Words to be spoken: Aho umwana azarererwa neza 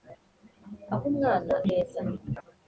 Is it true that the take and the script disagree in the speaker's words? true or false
true